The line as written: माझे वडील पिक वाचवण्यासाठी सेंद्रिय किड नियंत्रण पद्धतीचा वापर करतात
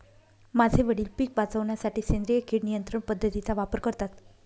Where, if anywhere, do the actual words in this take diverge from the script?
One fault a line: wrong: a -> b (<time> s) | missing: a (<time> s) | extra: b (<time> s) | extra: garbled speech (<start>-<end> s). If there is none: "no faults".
no faults